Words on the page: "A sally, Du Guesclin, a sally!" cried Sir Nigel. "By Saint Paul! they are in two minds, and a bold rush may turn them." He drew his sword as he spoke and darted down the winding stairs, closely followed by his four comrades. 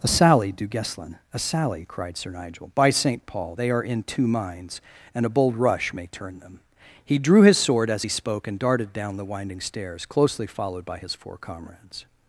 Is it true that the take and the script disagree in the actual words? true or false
false